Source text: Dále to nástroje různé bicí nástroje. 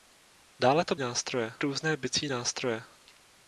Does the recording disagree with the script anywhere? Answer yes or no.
no